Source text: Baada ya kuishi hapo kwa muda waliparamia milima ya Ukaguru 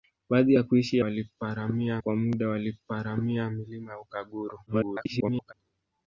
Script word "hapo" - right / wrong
wrong